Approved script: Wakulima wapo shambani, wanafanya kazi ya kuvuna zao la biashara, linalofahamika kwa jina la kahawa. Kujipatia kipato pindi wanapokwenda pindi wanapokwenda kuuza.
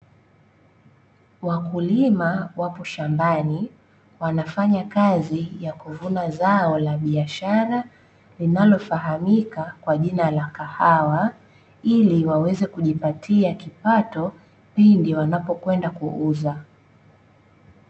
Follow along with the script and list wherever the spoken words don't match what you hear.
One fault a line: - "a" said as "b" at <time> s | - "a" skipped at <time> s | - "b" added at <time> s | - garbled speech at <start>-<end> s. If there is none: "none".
- "Ili waweze" added at 11.8 s
- "pindi wanapokwenda" skipped at 15.9 s